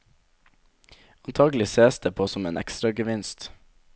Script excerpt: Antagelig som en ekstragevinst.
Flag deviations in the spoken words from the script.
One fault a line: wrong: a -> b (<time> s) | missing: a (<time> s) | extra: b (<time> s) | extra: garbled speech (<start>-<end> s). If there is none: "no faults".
extra: sees det på (1.7 s)